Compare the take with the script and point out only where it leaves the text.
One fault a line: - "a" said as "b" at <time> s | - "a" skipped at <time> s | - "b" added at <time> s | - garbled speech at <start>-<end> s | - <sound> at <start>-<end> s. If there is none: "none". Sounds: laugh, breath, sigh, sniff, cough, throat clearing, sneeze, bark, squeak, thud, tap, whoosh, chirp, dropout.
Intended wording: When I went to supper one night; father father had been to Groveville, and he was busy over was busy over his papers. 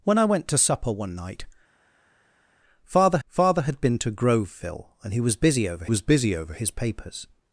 none